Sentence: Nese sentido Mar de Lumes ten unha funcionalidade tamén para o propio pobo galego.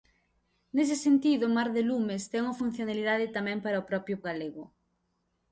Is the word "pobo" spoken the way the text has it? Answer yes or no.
no